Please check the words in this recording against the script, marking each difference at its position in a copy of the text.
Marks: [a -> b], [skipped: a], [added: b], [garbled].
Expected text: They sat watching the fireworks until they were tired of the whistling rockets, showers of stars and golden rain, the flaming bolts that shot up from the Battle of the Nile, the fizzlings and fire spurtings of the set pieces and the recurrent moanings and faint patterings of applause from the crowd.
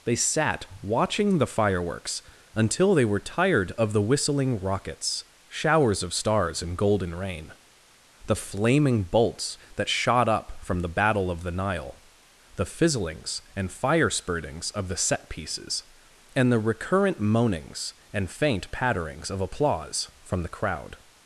They sat watching the fireworks until they were tired of the whistling rockets, showers of stars and golden rain, the flaming bolts that shot up from the Battle of the Nile, the fizzlings and fire spurtings of the set pieces and the recurrent moanings and faint patterings of applause from the crowd.